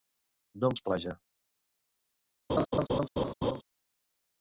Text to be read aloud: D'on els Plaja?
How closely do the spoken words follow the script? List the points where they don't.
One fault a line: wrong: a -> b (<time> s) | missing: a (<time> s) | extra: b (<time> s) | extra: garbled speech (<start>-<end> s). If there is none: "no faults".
no faults